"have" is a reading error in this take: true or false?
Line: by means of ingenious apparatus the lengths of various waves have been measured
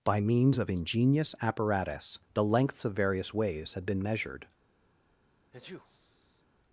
true